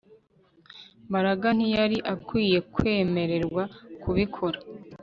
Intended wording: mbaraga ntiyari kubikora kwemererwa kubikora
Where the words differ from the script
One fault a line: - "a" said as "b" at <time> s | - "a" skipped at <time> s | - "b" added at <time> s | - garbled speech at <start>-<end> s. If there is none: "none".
- "kubikora" said as "akwiye" at 2.1 s